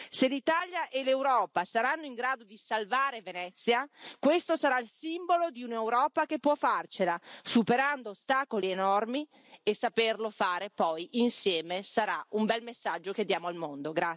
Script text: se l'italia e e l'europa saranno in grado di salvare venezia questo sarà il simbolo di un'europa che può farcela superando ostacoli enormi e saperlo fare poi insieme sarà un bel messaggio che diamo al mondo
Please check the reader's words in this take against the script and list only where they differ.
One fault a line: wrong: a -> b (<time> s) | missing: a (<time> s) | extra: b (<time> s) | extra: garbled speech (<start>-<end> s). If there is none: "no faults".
missing: e (1.0 s)